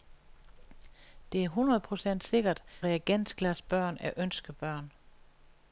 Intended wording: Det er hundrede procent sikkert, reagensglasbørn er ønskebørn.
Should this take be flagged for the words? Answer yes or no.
no